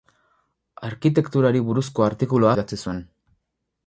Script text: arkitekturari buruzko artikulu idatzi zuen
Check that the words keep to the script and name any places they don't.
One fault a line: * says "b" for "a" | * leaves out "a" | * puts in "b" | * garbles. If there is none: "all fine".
all fine